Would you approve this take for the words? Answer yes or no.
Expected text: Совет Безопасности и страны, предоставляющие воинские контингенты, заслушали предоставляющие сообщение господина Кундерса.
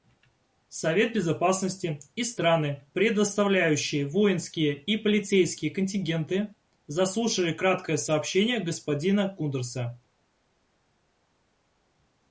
no